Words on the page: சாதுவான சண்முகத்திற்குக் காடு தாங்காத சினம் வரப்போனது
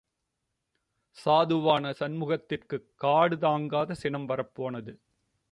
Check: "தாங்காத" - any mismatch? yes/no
no